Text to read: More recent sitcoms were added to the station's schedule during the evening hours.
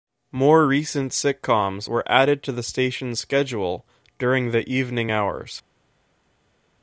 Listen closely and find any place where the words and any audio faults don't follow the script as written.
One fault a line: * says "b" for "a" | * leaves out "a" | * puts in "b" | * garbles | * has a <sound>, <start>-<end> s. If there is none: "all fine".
all fine